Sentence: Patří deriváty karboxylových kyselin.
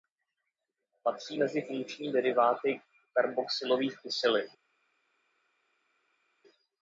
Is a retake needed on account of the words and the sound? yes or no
yes